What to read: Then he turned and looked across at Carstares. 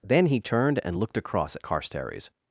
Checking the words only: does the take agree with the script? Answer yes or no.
yes